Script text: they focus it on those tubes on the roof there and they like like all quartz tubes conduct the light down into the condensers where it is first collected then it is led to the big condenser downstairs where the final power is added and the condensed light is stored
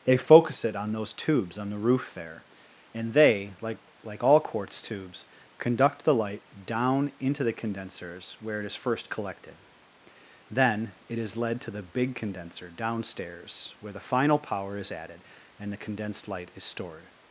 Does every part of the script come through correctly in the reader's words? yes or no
yes